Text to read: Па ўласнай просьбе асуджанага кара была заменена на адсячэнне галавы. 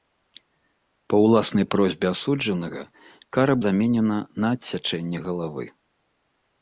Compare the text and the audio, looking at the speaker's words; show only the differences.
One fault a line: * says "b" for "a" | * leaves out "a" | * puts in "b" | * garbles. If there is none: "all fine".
* leaves out "была"